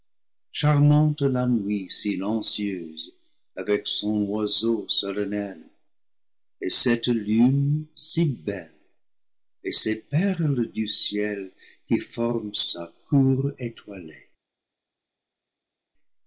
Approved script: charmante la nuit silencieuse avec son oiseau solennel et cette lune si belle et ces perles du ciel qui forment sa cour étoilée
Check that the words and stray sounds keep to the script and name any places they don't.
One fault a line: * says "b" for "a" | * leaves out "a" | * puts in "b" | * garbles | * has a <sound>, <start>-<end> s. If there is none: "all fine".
all fine